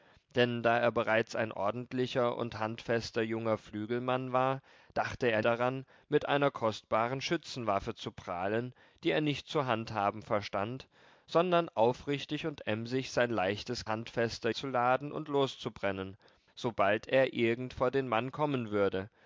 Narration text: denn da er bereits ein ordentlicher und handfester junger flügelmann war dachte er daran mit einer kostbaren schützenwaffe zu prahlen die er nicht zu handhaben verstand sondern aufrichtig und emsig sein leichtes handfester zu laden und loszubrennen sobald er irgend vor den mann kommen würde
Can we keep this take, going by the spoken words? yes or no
yes